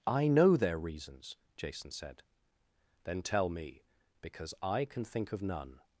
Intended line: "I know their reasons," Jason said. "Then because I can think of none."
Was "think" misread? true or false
false